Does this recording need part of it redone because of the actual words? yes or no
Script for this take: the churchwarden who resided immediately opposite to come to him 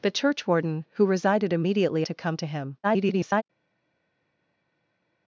yes